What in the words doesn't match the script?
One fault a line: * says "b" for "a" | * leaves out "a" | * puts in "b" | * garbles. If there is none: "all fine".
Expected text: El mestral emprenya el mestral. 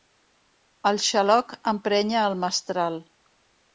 * says "xaloc" for "mestral"